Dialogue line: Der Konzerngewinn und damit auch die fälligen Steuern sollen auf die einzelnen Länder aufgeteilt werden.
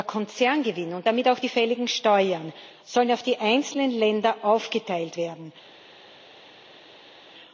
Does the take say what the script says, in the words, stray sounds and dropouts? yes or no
yes